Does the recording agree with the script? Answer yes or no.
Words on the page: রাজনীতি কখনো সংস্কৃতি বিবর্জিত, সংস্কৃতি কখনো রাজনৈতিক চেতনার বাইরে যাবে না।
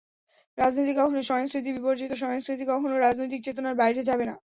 yes